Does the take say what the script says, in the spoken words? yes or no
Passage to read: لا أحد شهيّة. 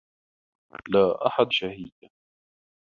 yes